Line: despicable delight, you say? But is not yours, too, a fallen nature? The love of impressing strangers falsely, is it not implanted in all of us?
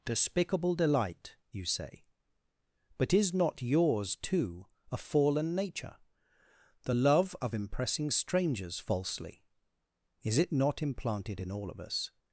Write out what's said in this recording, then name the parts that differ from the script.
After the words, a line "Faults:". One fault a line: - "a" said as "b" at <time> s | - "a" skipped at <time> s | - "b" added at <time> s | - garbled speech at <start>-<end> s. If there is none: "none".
despicable delight, you say? But is not yours, too, a fallen nature? The love of impressing strangers falsely, is it not implanted in all of us?
Faults:
none